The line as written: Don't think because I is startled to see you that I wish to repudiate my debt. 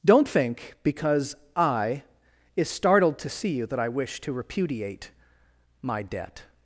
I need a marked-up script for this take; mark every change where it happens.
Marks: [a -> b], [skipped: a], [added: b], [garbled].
Don't think because I is startled to see you that I wish to repudiate my debt.